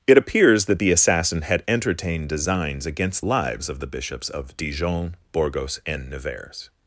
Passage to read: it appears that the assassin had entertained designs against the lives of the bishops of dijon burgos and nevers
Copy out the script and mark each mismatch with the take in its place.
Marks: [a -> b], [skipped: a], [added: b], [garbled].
it appears that the assassin had entertained designs against [skipped: the] lives of the bishops of dijon burgos and nevers